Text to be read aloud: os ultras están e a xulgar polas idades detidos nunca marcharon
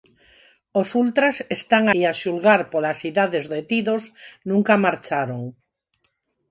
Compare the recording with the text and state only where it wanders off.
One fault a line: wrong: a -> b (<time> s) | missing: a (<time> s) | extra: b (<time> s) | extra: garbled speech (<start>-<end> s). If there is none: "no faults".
no faults